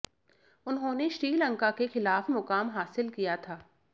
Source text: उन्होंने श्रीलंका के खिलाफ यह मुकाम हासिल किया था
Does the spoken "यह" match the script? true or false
false